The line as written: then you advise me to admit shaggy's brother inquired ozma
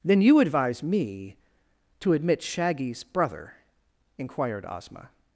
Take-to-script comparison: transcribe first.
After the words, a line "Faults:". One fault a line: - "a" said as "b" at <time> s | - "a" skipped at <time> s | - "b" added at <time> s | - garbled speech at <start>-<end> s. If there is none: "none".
then you advise me to admit shaggy's brother inquired ozma
Faults:
none